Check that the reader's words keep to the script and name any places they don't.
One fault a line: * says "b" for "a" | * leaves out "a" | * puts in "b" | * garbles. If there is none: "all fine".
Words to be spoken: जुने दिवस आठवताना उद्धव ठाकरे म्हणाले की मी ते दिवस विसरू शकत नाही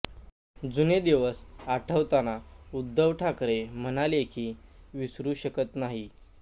* leaves out "मी ते दिवस"